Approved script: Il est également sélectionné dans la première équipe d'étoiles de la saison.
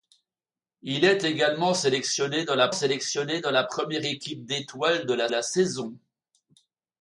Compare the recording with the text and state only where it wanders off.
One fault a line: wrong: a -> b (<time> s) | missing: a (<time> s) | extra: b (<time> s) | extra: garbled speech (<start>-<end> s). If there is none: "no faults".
extra: sélectionné dans la (2.7 s)
extra: la (5.3 s)